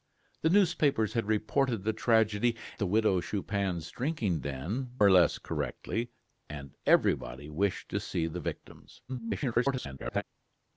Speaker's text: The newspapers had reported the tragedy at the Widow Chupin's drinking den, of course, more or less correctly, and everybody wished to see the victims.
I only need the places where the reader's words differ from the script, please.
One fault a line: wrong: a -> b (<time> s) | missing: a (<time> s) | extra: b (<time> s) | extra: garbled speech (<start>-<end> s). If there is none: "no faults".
missing: at (2.6 s)
missing: of course more (4.9 s)
extra: garbled speech (9.1-10.2 s)